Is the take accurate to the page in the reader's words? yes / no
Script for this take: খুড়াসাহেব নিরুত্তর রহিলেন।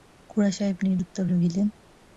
yes